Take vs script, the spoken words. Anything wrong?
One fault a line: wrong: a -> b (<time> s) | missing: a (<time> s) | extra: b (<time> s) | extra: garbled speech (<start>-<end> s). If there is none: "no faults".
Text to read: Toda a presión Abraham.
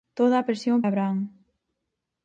no faults